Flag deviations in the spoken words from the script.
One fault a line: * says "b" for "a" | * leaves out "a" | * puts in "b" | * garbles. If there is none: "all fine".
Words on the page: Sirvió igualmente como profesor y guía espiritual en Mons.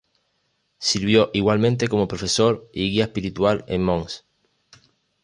all fine